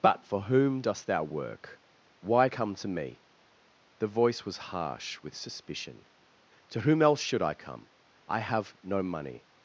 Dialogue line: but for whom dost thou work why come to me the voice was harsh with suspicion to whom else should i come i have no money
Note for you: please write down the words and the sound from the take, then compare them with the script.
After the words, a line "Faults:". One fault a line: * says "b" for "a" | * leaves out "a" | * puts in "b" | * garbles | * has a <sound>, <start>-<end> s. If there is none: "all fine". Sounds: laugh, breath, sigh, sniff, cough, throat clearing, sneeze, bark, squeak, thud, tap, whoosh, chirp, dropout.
but for whom dost thou work why come to me the voice was harsh with suspicion to whom else should i come i have no money
Faults:
all fine